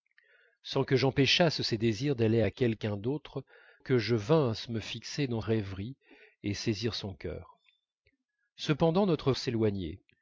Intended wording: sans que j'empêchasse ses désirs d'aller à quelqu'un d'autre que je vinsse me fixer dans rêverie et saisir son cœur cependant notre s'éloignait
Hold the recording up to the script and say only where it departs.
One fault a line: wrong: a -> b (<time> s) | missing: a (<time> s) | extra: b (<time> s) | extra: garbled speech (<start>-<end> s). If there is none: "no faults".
no faults